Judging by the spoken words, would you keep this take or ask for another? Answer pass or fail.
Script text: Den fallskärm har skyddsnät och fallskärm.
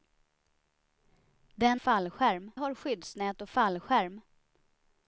pass